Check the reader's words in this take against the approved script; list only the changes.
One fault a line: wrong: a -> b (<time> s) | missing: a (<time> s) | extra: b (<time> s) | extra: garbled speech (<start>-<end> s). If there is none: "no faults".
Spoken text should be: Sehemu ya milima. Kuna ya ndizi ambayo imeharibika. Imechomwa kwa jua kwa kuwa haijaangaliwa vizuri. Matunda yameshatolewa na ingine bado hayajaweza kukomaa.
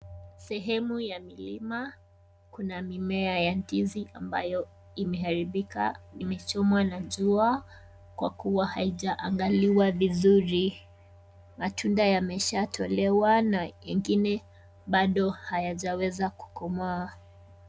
extra: mimea (2.8 s)
wrong: kwa -> na (6.8 s)